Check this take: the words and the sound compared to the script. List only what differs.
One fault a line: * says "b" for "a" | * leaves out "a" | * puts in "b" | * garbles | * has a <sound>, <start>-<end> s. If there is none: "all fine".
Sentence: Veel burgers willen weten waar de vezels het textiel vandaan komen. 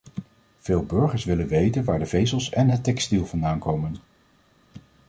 * puts in "en"